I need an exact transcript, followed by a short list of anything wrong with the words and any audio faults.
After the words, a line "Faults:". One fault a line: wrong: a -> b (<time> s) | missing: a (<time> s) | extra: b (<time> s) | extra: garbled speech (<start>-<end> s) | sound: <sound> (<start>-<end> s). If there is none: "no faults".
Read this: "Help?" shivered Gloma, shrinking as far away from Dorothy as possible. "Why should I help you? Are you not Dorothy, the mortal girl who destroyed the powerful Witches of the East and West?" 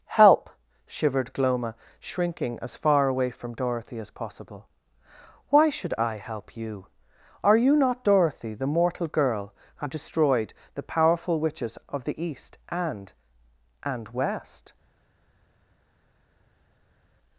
"Help?" shivered Gloma, shrinking as far away from Dorothy as possible. "Why should I help you? Are you not Dorothy, the mortal girl who destroyed the powerful Witches of the East and and West?"
Faults:
extra: and (13.8 s)